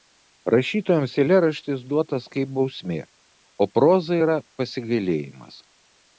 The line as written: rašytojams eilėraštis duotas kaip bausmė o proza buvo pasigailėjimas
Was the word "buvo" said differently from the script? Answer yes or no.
yes